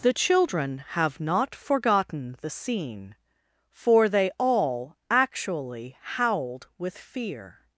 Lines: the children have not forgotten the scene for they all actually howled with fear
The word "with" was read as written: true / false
true